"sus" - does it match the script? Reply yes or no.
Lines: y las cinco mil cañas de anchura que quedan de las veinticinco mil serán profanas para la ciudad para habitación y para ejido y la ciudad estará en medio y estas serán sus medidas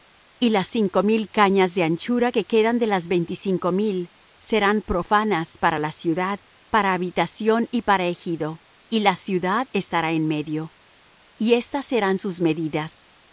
yes